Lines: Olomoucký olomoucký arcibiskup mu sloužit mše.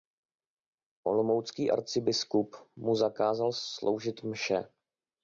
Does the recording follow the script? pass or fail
fail